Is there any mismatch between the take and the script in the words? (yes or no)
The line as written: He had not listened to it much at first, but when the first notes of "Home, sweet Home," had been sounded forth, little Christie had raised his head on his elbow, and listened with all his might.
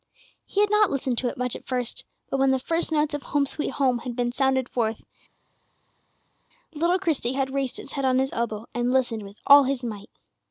no